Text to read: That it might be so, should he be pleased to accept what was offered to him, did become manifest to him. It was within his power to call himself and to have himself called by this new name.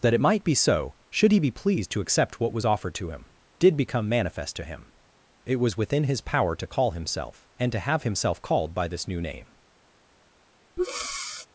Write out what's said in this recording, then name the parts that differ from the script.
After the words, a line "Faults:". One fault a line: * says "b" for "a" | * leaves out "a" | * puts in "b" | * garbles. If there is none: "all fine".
That it might be so, should he be pleased to accept what was offered to him, did become manifest to him. It was within his power to call himself and to have himself called by this new name.
Faults:
all fine